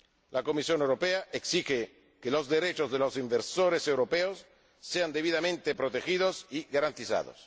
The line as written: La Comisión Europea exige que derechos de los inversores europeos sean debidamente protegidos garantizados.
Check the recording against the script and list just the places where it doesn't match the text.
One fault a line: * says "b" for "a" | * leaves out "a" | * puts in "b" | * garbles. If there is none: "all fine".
* puts in "los"
* puts in "y"